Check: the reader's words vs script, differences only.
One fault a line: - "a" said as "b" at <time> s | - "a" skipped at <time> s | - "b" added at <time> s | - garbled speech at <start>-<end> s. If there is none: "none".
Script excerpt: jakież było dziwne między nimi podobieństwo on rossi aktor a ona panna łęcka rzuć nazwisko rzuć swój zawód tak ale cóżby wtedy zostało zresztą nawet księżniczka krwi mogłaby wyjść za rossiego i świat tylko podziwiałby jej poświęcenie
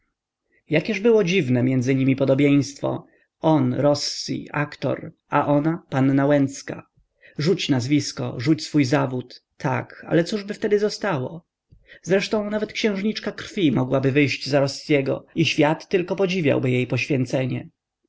none